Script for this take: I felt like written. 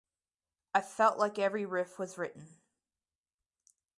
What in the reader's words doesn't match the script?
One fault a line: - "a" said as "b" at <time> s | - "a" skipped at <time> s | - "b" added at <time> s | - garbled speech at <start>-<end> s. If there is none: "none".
- "every riff was" added at 1.4 s